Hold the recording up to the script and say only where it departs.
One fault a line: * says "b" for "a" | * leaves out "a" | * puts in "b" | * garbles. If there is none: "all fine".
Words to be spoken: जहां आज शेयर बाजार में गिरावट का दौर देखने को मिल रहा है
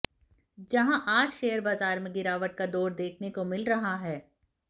all fine